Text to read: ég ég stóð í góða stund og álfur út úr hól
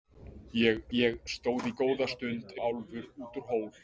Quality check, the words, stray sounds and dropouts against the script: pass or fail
pass